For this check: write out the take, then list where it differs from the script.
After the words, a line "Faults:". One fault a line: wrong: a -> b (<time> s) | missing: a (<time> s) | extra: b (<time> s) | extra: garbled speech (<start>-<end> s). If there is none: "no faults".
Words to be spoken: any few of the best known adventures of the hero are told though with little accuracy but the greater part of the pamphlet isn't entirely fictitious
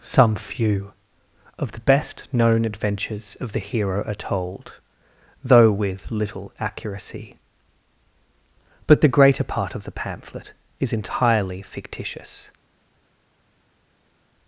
some few of the best known adventures of the hero are told though with little accuracy but the greater part of the pamphlet is entirely fictitious
Faults:
wrong: any -> some (0.0 s)
wrong: isn't -> is (10.8 s)